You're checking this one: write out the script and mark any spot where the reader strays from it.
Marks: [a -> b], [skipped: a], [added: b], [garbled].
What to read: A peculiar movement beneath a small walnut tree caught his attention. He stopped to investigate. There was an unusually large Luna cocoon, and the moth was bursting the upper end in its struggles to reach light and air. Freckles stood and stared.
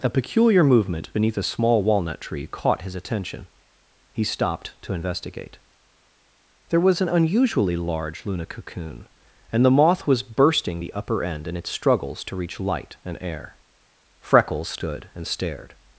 A peculiar movement beneath a small walnut tree caught his attention. He stopped to investigate. There was an unusually large Luna cocoon, and the moth was bursting the upper end in its struggles to reach light and air. Freckles stood and stared.